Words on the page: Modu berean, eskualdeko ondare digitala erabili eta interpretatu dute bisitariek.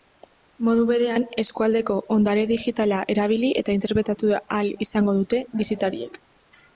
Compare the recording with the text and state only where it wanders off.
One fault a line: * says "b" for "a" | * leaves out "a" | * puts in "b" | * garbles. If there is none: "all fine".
* puts in "ahal izango"